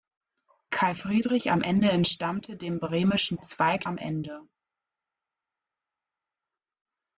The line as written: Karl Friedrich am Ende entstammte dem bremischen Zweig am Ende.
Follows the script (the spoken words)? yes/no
yes